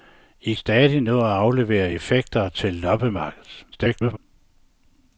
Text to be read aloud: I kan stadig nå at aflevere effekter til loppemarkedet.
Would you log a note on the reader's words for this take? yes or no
yes